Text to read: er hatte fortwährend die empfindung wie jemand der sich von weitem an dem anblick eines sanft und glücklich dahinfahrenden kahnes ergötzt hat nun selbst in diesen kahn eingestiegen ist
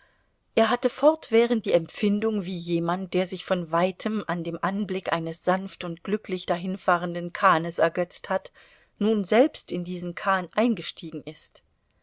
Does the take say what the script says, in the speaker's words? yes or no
yes